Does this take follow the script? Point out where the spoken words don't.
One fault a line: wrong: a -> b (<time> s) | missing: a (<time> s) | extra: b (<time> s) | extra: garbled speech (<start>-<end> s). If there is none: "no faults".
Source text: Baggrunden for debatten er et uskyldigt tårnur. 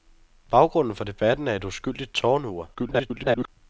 extra: garbled speech (2.7-3.5 s)